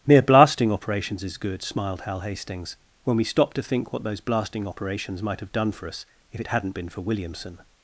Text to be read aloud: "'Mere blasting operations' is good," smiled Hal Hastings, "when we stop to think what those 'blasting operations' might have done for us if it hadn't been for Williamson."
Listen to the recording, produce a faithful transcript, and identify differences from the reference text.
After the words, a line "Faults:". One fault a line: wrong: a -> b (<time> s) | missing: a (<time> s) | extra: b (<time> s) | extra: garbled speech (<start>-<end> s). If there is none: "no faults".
"'Mere blasting operations' is good," smiled Hal Hastings, "when we stop to think what those 'blasting operations' might have done for us if it hadn't been for Williamson."
Faults:
no faults